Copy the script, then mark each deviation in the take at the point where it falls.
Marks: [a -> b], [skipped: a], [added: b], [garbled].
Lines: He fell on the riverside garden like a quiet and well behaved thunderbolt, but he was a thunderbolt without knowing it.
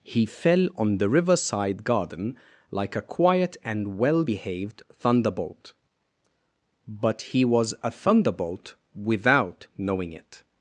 He fell on the riverside garden like a quiet and well behaved thunderbolt, but he was a thunderbolt without knowing it.